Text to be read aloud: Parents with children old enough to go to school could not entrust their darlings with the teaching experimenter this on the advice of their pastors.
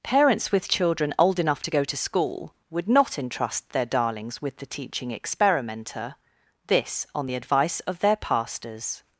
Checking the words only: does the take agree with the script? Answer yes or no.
no